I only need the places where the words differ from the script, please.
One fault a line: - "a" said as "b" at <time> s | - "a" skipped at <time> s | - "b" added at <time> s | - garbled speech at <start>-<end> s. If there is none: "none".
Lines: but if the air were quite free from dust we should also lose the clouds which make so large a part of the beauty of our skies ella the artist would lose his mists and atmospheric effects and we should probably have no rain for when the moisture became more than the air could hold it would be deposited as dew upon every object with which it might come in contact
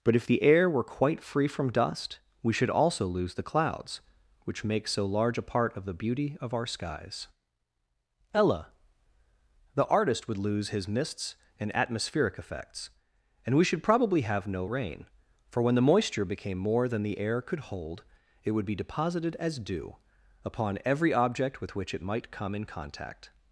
none